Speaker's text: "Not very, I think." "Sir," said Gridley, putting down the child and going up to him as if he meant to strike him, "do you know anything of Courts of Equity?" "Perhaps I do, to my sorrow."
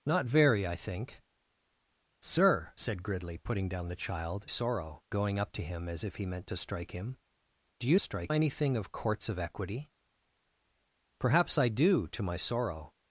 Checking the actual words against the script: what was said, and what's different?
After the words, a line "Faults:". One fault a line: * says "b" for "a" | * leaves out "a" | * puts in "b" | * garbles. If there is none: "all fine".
"Not very, I think." "Sir," said Gridley, putting down the child sorrow going up to him as if he meant to strike him, "do you strike anything of Courts of Equity?" "Perhaps I do, to my sorrow."
Faults:
* says "sorrow" for "and"
* says "strike" for "know"